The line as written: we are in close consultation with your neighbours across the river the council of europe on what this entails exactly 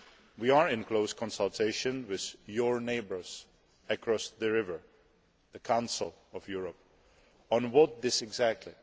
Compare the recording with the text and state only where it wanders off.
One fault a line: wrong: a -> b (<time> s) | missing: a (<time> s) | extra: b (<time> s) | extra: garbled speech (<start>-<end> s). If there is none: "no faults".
missing: entails (8.2 s)